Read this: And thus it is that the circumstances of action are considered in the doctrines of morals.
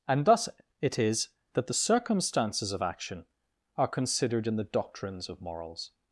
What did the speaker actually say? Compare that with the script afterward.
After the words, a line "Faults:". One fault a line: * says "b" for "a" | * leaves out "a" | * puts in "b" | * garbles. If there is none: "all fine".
And thus it is that the circumstances of action are considered in the doctrines of morals.
Faults:
all fine